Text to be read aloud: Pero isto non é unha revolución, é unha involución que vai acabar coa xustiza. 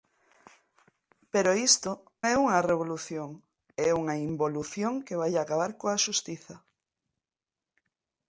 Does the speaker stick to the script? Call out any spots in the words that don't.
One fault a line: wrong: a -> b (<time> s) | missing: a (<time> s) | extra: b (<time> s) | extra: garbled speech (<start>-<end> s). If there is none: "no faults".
missing: non (1.9 s)